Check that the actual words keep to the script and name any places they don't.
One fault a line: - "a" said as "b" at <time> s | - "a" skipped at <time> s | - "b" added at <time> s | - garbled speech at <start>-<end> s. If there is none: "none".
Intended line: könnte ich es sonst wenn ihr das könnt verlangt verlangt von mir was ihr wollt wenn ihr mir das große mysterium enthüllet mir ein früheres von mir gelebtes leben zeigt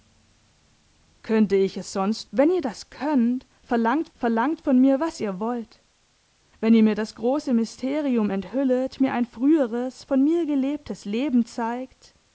none